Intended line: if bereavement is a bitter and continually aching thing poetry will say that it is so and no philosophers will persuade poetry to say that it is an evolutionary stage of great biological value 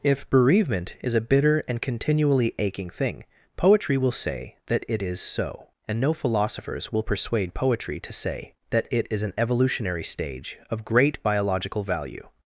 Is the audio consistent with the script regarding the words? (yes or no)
yes